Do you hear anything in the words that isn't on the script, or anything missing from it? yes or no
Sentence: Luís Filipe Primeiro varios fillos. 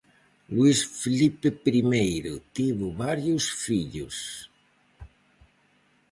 yes